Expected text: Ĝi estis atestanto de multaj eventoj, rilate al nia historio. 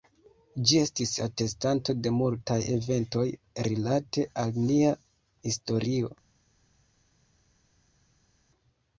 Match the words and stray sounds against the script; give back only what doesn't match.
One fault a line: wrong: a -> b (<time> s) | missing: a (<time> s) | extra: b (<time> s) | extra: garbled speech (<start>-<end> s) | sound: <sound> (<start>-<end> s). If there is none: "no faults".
no faults